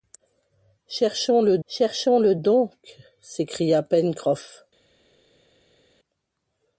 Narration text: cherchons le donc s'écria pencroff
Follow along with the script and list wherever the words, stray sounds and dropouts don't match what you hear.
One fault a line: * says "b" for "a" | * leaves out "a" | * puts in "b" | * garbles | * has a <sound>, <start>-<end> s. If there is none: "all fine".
* puts in "cherchons le"